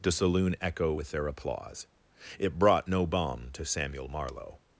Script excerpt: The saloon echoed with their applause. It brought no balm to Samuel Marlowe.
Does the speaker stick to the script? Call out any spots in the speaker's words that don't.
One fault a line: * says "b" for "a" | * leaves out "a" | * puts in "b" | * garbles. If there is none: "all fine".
* says "echo" for "echoed"